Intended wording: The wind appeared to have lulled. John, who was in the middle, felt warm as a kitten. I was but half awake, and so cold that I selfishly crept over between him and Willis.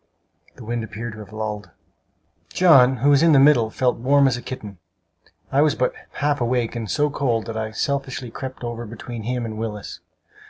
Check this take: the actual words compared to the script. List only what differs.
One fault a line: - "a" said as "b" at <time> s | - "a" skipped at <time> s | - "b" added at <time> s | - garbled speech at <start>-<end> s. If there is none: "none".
none